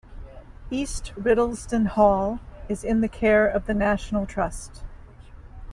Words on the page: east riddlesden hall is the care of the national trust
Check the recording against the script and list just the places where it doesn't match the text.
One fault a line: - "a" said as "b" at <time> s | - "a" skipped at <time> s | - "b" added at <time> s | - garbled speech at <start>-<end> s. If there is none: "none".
- "in" added at 2.8 s